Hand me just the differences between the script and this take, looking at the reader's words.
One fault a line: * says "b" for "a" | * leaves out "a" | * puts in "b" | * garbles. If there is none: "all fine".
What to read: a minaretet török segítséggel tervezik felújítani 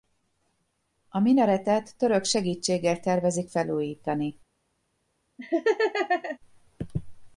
all fine